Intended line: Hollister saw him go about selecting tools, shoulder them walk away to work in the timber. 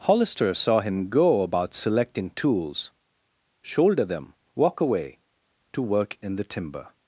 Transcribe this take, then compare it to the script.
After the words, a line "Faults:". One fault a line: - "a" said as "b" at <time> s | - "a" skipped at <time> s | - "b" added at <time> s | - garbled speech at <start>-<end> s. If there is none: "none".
Hollister saw him go about selecting tools, shoulder them walk away to work in the timber.
Faults:
none